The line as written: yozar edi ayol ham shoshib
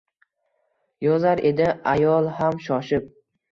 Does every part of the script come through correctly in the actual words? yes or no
yes